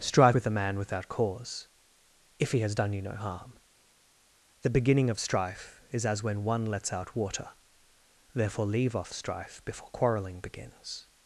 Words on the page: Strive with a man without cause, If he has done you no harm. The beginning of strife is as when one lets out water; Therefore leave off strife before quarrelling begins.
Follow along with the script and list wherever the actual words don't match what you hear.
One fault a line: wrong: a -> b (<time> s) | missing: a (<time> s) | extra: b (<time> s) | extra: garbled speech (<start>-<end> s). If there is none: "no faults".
no faults